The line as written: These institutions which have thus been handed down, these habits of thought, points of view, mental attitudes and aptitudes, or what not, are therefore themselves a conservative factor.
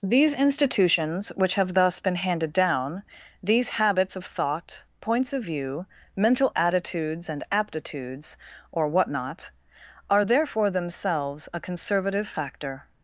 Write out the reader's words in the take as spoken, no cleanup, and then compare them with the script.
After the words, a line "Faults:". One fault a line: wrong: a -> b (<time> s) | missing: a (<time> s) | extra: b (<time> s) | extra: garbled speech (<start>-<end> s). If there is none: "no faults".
These institutions which have thus been handed down, these habits of thought, points of view, mental attitudes and aptitudes, or what not, are therefore themselves a conservative factor.
Faults:
no faults